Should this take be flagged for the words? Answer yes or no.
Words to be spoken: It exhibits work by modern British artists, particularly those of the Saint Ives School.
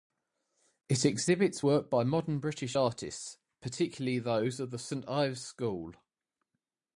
no